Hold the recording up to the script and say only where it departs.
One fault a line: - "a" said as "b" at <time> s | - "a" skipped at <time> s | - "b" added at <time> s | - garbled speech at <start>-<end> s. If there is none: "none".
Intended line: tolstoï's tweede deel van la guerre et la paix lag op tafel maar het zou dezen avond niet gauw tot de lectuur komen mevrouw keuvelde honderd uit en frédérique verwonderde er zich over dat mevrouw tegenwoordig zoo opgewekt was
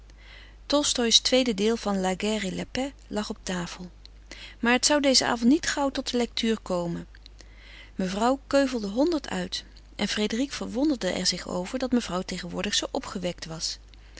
none